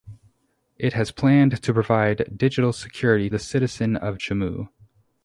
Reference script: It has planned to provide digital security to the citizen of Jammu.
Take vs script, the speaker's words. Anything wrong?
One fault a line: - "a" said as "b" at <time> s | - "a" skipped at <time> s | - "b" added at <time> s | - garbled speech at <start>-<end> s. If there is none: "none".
- "to" skipped at 3.3 s